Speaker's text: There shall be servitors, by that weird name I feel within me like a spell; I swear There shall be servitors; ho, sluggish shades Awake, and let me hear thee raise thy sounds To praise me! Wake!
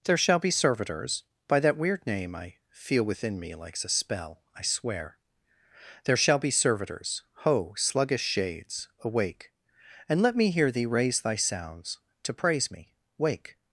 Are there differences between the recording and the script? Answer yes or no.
yes